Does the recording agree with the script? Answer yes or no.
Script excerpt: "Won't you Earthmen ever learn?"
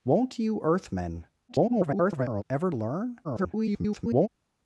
no